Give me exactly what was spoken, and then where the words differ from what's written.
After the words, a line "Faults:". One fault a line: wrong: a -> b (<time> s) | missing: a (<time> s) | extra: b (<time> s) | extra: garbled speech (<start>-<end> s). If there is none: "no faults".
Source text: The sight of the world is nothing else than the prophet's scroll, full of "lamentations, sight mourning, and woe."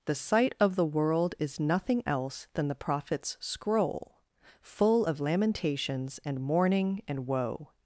The sight of the world is nothing else than the prophet's scroll, full of "lamentations, and mourning, and woe."
Faults:
wrong: sight -> and (6.2 s)